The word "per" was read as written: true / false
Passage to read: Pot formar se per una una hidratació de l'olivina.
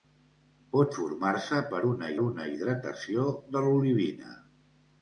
true